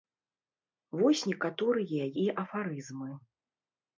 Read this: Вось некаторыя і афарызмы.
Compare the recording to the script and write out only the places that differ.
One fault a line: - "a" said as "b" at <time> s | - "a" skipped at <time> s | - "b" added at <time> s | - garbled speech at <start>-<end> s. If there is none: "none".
none